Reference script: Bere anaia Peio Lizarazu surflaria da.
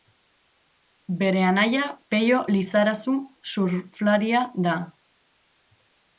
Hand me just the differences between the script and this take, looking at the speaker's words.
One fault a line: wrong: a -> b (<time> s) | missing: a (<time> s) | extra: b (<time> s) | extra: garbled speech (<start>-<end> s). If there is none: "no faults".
no faults